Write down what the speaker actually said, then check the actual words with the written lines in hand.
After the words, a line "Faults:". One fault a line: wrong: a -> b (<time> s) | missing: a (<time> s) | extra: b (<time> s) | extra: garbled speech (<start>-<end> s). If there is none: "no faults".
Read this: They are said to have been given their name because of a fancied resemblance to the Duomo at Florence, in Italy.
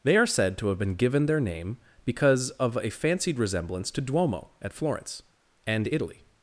They are said to have been given their name because of a fancied resemblance to Duomo at Florence, and Italy.
Faults:
missing: the (4.0 s)
wrong: in -> and (5.7 s)